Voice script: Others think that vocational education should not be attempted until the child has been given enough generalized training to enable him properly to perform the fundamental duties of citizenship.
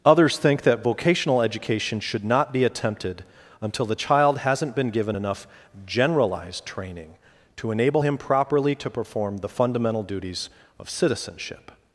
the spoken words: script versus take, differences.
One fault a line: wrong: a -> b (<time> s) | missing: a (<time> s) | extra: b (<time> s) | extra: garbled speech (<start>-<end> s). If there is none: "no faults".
wrong: has -> hasn't (4.4 s)